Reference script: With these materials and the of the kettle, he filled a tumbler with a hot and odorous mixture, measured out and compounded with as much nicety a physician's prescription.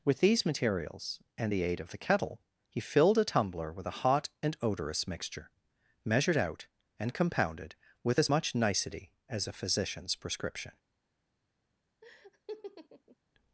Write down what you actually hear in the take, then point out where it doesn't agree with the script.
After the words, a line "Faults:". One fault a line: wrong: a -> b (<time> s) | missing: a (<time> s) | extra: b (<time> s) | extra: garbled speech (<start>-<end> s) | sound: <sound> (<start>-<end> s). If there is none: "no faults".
With these materials and the aid of the kettle, he filled a tumbler with a hot and odorous mixture, measured out and compounded with as much nicety as a physician's prescription.
Faults:
extra: aid (1.6 s)
extra: as (9.3 s)
sound: laugh (12.0-13.2 s)